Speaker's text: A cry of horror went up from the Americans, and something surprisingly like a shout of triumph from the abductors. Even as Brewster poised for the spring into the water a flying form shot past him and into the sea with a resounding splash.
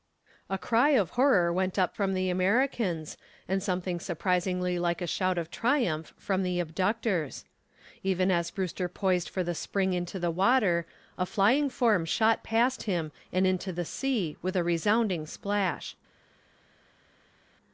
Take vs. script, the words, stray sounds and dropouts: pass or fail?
pass